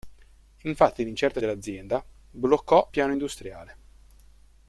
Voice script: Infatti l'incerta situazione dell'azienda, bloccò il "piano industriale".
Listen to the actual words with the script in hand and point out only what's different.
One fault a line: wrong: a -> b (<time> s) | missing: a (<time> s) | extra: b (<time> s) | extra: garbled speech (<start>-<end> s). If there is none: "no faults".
missing: situazione (1.4 s)
missing: il (2.9 s)